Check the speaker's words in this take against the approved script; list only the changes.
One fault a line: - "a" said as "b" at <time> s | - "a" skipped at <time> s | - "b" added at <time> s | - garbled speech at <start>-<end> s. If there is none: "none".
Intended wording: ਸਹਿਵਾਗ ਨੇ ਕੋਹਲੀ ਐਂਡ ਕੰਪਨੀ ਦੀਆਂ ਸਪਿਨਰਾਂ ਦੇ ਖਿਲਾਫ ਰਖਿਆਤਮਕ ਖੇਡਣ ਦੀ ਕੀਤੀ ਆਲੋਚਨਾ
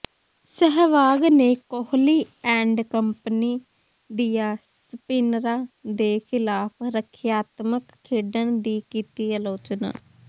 none